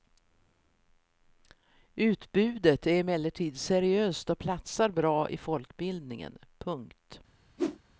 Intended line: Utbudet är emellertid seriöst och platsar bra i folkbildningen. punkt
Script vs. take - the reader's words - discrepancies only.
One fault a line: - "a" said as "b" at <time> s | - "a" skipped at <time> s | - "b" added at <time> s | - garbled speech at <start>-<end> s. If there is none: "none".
none